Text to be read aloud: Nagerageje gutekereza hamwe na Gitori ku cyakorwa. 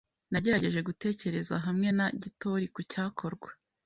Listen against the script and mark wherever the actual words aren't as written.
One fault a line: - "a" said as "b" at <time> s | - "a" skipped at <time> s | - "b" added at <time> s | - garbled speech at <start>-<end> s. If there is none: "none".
none